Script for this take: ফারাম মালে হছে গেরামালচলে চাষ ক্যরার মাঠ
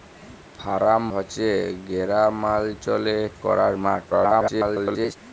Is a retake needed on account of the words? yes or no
yes